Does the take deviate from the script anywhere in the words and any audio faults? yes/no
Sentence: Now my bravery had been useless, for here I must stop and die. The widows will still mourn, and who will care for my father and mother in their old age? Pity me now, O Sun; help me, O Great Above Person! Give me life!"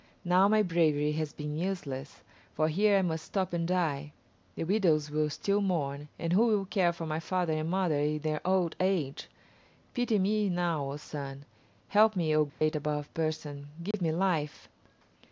yes